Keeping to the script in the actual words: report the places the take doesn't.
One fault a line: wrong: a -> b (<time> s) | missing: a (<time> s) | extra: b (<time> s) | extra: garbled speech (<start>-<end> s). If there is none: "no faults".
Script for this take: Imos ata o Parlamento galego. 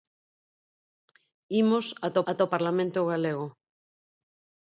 extra: ata (2.3 s)